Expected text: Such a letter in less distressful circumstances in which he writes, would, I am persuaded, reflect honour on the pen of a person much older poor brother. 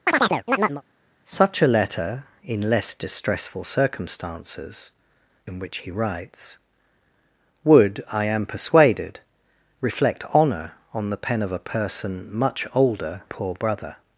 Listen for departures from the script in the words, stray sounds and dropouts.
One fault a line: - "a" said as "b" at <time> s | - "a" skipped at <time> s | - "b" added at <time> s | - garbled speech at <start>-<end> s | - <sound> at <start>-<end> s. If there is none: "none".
- chirp at 0.1-0.8 s